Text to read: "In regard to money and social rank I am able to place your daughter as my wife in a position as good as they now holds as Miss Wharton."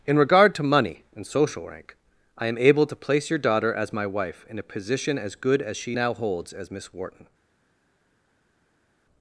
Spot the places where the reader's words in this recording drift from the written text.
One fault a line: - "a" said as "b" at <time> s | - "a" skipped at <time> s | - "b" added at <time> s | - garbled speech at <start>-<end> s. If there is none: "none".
- "they" said as "she" at 5.8 s